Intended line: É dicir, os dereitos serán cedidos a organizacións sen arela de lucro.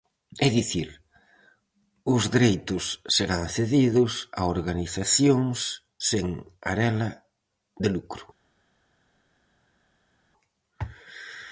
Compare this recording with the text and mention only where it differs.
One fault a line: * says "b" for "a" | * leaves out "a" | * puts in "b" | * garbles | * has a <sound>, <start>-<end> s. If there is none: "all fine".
all fine